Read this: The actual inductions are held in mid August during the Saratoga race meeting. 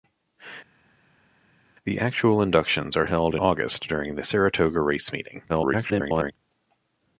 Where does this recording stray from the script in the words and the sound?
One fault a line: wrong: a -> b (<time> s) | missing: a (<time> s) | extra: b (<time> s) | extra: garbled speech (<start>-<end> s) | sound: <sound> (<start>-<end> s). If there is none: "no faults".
missing: in mid (3.4 s)
extra: garbled speech (5.5-6.3 s)